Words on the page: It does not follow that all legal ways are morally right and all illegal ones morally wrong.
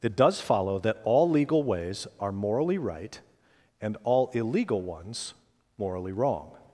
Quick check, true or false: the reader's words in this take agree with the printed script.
false